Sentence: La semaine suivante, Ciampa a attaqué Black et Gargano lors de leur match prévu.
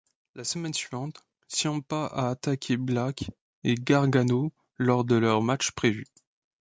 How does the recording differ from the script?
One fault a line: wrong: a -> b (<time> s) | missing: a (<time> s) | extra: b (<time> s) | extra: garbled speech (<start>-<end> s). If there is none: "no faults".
no faults